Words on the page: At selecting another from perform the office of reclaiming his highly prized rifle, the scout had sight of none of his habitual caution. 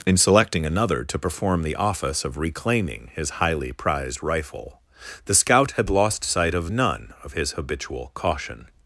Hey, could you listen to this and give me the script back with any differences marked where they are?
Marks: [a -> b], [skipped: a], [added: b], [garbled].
[At -> In] selecting another [from -> to] perform the office of reclaiming his highly prized rifle, the scout had [added: lost] sight of none of his habitual caution.